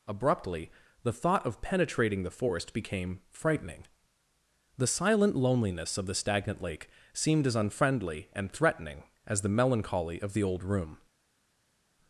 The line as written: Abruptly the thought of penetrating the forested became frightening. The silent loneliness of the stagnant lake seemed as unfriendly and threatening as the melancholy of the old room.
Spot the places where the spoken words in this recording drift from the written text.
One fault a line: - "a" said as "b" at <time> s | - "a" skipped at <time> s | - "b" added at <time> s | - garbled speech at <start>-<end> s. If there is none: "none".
- "forested" said as "forest" at 2.3 s